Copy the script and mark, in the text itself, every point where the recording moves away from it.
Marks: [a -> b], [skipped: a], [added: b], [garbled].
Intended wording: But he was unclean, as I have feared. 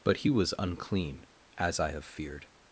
But he was unclean, as I have feared.